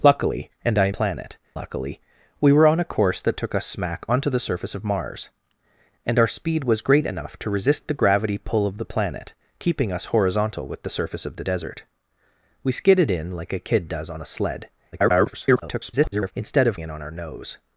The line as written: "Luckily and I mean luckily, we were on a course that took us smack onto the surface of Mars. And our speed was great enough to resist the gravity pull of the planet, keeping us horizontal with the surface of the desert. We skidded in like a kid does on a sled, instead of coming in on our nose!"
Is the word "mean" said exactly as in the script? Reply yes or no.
no